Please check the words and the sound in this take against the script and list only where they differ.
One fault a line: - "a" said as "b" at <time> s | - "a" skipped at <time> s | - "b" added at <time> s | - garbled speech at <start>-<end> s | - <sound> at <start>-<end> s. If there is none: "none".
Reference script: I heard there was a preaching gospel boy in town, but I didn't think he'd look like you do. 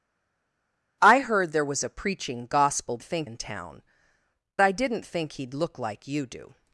- "boy" said as "think" at 3.0 s
- "but" skipped at 3.8 s